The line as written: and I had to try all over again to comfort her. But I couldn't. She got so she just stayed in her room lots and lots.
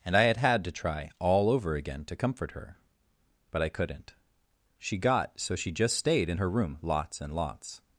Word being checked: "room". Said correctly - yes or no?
yes